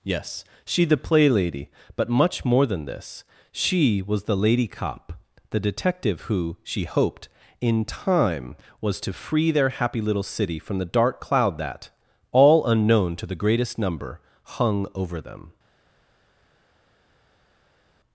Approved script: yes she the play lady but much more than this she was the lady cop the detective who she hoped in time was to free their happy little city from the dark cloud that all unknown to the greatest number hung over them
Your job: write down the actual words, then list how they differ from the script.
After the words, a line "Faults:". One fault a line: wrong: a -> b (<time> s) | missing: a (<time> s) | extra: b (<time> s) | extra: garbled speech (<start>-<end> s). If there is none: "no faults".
yes she the play lady but much more than this she was the lady cop the detective who she hoped in time was to free their happy little city from the dark cloud that all unknown to the greatest number hung over them
Faults:
no faults